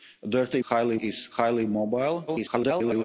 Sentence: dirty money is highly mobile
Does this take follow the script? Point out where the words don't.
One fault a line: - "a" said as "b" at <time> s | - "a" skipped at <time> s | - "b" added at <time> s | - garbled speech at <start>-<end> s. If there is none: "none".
- "money" said as "highly" at 0.6 s
- garbled speech at 2.3-3.0 s